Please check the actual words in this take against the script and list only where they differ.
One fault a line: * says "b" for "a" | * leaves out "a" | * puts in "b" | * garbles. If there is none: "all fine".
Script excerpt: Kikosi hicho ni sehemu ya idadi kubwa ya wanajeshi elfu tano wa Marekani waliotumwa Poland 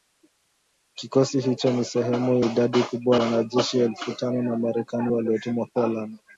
* leaves out "ya"
* leaves out "ya"